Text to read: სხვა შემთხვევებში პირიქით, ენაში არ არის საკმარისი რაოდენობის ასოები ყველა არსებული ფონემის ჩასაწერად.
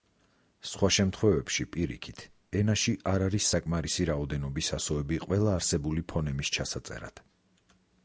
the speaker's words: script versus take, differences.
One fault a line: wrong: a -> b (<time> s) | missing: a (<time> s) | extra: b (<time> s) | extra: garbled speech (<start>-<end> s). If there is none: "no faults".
no faults